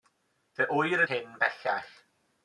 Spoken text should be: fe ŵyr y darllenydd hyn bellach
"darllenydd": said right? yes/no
no